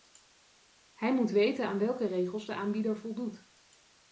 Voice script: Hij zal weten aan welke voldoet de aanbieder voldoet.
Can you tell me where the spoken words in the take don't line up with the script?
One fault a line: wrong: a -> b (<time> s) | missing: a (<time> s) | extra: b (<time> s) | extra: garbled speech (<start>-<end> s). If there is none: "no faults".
wrong: zal -> moet (1.1 s)
wrong: voldoet -> regels (2.0 s)